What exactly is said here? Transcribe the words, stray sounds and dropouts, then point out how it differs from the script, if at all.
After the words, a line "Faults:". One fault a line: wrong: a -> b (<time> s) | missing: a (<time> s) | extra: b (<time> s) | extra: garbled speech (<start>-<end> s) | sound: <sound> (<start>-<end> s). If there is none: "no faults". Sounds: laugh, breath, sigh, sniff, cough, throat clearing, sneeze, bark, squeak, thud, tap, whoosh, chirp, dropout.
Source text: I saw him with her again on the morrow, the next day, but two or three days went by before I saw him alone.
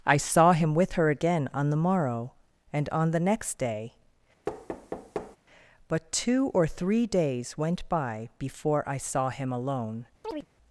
I saw him with her again on the morrow, and on the next day, but two or three days went by before I saw him alone.
Faults:
extra: and on (2.7 s)
sound: thud (4.5-5.4 s)
sound: chirp (10.2-10.5 s)